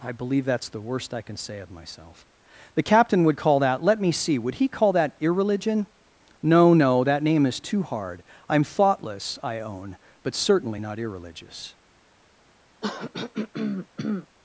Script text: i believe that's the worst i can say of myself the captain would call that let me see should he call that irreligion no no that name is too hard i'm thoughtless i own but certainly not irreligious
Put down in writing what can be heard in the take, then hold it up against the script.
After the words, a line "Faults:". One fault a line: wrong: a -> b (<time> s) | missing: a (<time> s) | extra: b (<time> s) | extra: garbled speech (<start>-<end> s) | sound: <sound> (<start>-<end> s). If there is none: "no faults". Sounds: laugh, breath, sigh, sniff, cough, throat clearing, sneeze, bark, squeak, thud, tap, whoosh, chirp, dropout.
i believe that's the worst i can say of myself the captain would call that let me see would he call that irreligion no no that name is too hard i'm thoughtless i own but certainly not irreligious
Faults:
wrong: should -> would (4.4 s)
sound: throat clearing (12.8-14.3 s)